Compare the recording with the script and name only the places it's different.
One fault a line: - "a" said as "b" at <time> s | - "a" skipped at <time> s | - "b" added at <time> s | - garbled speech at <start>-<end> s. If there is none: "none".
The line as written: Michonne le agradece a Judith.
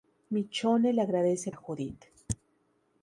none